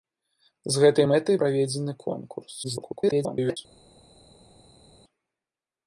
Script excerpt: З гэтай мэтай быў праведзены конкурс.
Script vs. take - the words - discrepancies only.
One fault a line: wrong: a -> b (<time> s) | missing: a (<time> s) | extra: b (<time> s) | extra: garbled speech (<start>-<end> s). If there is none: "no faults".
missing: быў (1.4 s)
extra: garbled speech (2.6-3.6 s)